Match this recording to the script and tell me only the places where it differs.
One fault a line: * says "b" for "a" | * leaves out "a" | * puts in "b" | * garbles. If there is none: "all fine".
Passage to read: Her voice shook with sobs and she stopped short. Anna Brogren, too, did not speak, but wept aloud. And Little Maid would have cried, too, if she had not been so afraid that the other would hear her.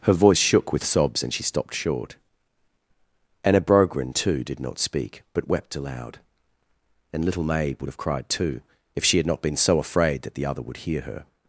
all fine